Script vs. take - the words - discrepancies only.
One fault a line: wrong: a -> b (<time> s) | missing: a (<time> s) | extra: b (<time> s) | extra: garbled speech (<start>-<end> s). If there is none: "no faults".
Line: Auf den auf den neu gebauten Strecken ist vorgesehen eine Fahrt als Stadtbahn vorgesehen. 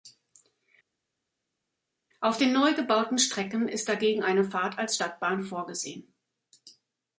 missing: auf den (2.5 s)
wrong: vorgesehen -> dagegen (3.9 s)